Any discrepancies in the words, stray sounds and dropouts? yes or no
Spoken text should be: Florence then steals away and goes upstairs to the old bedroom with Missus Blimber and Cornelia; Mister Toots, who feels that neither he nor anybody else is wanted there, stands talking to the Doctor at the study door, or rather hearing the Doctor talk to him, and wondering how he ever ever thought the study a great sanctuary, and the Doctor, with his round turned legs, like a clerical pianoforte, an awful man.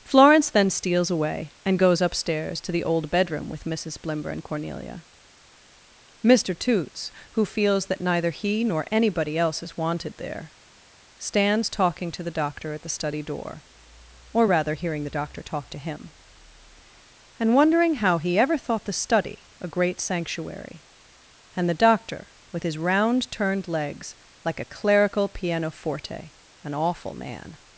yes